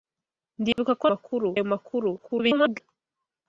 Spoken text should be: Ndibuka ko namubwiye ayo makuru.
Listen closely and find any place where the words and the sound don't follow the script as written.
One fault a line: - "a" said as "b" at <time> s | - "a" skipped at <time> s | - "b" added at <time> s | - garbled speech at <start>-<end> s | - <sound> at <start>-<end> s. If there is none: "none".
- dropout at 0.7-0.8 s
- "namubwiye" said as "makuru" at 1.1 s
- garbled speech at 2.2-2.8 s